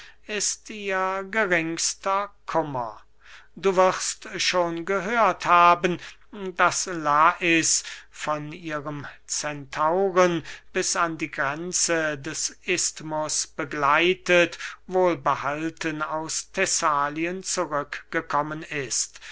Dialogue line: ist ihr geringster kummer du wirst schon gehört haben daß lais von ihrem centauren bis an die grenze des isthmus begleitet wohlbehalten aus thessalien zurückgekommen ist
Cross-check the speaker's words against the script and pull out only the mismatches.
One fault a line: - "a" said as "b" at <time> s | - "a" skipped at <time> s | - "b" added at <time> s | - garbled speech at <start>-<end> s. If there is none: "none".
none